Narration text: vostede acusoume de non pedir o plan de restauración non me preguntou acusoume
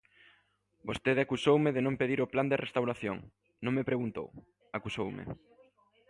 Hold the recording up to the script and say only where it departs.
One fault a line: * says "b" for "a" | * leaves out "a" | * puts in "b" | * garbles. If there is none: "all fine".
all fine